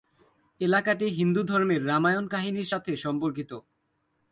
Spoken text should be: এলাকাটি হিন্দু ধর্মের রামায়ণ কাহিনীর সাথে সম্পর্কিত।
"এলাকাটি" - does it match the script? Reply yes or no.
yes